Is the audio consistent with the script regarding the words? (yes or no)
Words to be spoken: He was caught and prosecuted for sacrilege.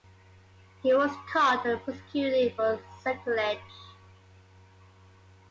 yes